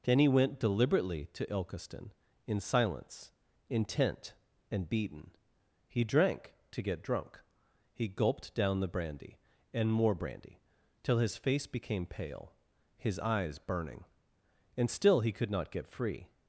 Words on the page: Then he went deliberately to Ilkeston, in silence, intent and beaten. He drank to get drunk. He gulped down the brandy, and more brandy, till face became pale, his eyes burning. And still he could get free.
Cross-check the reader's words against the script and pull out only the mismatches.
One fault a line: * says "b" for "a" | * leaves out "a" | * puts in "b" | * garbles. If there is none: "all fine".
* puts in "his"
* puts in "not"